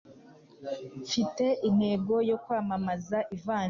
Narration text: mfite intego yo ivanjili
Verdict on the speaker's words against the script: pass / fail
fail